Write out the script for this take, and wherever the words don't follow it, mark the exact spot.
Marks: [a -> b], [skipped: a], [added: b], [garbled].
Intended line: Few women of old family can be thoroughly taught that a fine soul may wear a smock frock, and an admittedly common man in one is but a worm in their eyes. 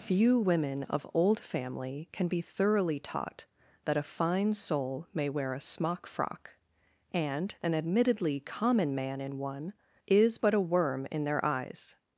Few women of old family can be thoroughly taught that a fine soul may wear a smock frock, and an admittedly common man in one is but a worm in their eyes.